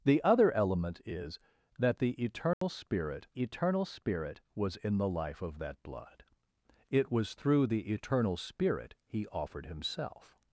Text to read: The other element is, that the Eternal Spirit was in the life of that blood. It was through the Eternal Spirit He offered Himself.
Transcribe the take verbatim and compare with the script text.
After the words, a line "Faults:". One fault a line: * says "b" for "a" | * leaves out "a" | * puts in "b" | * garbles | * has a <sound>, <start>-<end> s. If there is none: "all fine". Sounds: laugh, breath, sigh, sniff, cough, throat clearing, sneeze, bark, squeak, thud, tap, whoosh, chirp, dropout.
The other element is, that the Eternal Spirit Eternal Spirit was in the life of that blood. It was through the Eternal Spirit He offered Himself.
Faults:
* has a dropout, 2.5-2.6 s
* puts in "Eternal Spirit"